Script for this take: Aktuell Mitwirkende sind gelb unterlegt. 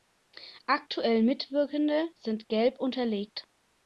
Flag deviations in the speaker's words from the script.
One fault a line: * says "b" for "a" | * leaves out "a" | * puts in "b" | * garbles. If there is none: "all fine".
all fine